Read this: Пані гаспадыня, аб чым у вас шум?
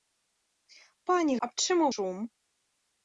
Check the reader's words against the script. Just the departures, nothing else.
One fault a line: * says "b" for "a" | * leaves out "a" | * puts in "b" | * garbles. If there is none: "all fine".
* leaves out "гаспадыня"
* leaves out "вас"